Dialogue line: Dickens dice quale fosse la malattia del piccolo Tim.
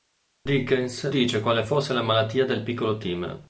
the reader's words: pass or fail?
pass